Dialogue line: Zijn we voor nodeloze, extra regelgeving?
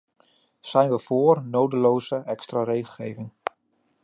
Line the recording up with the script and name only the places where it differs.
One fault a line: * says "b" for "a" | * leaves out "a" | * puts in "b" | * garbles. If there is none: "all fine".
all fine